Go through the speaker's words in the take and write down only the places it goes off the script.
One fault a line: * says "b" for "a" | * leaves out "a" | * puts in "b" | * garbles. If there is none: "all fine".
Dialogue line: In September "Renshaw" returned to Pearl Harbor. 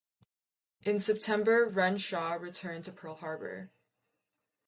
all fine